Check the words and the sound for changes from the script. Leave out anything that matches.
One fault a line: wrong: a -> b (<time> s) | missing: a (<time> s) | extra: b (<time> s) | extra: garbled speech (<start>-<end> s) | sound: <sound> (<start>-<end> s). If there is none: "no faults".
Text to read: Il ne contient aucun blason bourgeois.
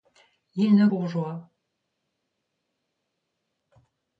missing: contient aucun blason (0.9 s)